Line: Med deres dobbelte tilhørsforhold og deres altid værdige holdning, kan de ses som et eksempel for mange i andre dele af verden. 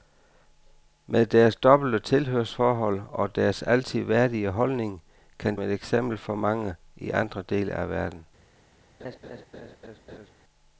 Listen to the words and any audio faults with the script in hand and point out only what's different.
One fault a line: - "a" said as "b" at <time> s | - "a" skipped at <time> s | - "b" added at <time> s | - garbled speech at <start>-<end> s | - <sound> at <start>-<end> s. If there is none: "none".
- "de ses som" skipped at 5.5 s
- laugh at 9.0-10.3 s